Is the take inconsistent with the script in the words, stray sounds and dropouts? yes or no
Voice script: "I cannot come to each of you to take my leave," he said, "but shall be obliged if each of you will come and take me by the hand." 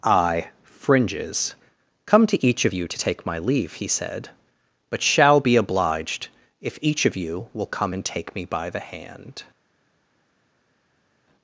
yes